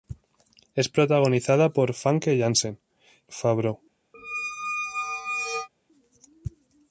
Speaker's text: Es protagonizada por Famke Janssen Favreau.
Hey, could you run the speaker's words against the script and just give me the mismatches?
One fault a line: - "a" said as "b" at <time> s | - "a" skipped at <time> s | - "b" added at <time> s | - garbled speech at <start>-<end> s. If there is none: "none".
none